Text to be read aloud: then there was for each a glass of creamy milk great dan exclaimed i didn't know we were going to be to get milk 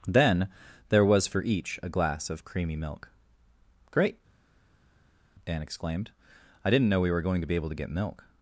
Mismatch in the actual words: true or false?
true